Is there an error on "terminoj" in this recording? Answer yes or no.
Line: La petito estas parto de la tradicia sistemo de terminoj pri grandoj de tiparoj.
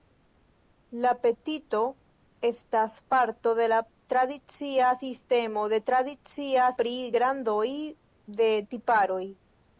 yes